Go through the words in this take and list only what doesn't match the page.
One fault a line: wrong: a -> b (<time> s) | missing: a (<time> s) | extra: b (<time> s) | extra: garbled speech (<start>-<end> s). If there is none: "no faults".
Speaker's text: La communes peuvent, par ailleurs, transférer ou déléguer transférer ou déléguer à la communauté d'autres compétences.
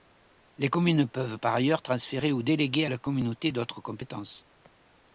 wrong: La -> Les (0.6 s)
missing: transférer ou déléguer (2.9 s)